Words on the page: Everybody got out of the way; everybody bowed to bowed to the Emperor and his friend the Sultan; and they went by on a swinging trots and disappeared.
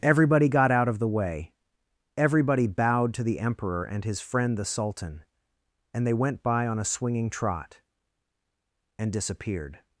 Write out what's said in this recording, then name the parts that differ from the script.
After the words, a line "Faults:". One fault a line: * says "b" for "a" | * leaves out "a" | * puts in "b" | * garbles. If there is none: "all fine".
Everybody got out of the way; everybody bowed to the Emperor and his friend the Sultan; and they went by on a swinging trot and disappeared.
Faults:
* leaves out "bowed to"
* says "trot" for "trots"